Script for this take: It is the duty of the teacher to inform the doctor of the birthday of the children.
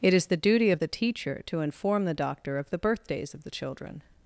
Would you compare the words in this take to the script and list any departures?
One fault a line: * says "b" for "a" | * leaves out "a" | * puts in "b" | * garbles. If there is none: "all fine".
* says "birthdays" for "birthday"